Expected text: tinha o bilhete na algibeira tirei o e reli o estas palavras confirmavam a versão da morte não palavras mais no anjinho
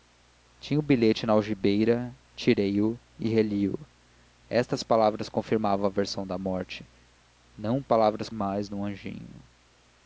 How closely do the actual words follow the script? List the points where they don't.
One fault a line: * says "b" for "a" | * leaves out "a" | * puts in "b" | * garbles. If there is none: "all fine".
all fine